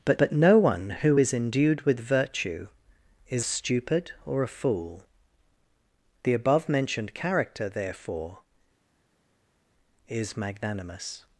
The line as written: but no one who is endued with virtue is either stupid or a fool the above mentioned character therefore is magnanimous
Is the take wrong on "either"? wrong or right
wrong